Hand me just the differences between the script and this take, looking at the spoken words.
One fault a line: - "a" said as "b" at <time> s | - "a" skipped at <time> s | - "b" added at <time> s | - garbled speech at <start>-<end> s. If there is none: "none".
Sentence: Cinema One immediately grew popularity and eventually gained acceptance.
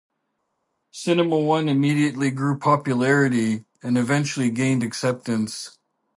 none